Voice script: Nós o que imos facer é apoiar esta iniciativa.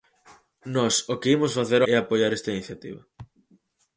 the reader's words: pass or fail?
pass